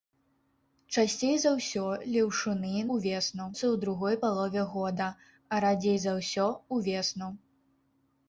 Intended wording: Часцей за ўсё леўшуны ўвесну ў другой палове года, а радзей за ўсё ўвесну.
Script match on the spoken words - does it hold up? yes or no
yes